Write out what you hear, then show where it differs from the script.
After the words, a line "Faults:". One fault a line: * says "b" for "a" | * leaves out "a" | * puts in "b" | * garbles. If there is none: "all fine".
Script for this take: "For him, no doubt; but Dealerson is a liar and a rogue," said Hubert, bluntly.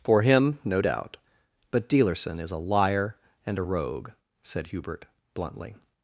"For him, no doubt; but Dealerson is a liar and a rogue," said Hubert, bluntly.
Faults:
all fine